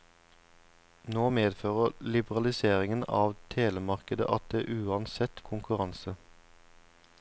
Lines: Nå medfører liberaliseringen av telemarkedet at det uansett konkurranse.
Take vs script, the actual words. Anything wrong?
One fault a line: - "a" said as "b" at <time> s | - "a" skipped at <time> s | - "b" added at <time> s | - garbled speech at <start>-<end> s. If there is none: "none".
none